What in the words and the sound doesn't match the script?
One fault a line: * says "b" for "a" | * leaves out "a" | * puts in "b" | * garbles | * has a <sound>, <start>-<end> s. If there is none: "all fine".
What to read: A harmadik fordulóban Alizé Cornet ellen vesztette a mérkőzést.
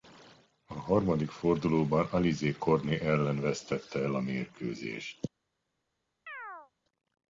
* puts in "el"
* has a chirp, 6.3-6.7 s